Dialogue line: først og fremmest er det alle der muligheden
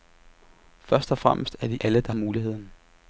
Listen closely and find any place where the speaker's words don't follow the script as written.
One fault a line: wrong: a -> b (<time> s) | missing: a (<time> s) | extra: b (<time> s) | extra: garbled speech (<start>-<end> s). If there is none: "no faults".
no faults